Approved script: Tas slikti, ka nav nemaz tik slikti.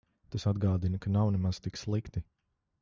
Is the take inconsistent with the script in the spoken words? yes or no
yes